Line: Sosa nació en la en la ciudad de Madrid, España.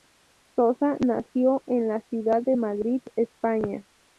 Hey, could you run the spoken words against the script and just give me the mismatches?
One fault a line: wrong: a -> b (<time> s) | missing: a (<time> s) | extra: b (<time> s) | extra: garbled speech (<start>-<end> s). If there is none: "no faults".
missing: en la (2.0 s)